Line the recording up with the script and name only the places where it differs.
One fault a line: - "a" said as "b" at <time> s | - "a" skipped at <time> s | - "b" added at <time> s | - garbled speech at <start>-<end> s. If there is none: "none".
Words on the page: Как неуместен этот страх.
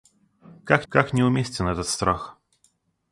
- "как" added at 0.9 s